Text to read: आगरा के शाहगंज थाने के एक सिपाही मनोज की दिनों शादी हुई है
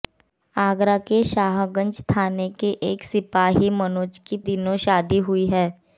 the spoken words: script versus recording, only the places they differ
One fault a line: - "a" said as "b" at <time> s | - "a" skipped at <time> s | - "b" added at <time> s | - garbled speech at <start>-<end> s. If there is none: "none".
none